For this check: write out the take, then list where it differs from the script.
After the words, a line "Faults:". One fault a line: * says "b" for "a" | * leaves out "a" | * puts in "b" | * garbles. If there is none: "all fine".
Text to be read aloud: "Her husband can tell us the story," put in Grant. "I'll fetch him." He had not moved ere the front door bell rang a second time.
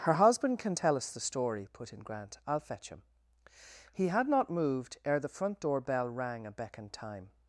"Her husband can tell us the story," put in Grant. "I'll fetch him." He had not moved ere the front door bell rang a beckoned time.
Faults:
* says "beckoned" for "second"